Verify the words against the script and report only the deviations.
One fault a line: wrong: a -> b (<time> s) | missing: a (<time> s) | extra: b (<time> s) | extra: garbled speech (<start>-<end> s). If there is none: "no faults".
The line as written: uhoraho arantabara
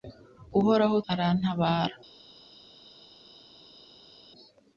no faults